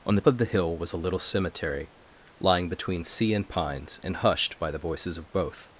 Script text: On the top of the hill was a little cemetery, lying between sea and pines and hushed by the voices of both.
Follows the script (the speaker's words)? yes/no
no